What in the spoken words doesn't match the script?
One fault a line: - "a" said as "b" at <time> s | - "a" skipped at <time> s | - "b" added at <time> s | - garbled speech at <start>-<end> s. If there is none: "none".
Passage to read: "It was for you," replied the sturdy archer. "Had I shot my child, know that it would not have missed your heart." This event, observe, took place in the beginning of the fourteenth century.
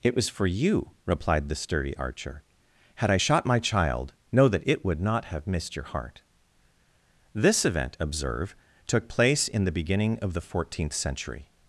none